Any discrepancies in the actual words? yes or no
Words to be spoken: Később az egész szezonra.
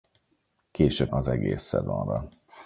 no